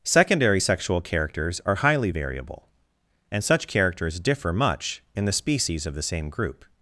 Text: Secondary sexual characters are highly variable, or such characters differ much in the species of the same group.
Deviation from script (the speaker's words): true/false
true